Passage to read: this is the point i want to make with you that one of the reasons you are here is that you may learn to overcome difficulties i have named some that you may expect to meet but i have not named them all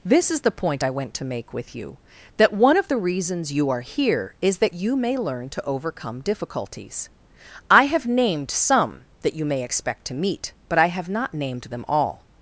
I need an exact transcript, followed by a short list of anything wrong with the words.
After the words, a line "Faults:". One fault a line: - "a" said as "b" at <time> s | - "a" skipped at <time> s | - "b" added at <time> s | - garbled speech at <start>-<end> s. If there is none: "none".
this is the point i went to make with you that one of the reasons you are here is that you may learn to overcome difficulties i have named some that you may expect to meet but i have not named them all
Faults:
- "want" said as "went" at 0.9 s